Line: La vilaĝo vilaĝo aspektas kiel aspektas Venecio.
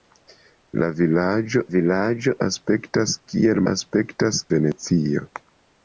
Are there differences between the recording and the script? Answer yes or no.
no